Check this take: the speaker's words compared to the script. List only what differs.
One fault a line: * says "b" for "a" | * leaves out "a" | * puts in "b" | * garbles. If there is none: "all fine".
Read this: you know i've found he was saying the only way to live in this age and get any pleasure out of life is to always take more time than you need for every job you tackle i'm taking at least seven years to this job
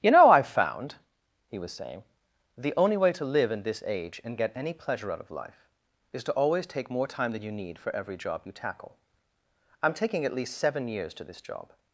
all fine